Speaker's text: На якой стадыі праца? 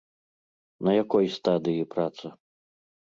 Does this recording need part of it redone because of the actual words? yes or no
no